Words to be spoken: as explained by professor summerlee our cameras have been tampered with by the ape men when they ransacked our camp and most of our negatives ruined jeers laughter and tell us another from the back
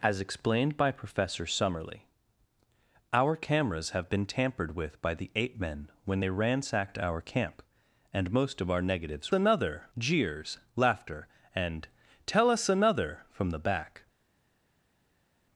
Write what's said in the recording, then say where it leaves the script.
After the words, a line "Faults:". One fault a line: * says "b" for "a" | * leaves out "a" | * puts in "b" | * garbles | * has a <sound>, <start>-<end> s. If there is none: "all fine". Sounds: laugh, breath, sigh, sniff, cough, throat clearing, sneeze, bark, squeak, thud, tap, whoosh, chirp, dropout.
as explained by professor summerlee our cameras have been tampered with by the ape men when they ransacked our camp and most of our negatives another jeers laughter and tell us another from the back
Faults:
* says "another" for "ruined"